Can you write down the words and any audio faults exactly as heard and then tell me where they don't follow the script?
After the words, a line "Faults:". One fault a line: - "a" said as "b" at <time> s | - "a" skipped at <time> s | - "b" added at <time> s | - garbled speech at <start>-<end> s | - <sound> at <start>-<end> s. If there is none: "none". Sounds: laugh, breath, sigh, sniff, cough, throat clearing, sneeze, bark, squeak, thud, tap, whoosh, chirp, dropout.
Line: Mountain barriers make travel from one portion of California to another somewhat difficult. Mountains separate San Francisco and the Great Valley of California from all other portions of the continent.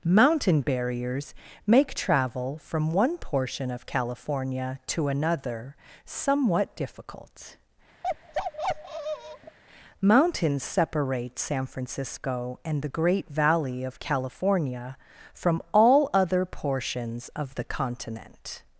Mountain barriers make travel from one portion of California to another somewhat difficult. Mountains separate San Francisco and the Great Valley of California from all other portions of the continent.
Faults:
- bark at 8.0-9.6 s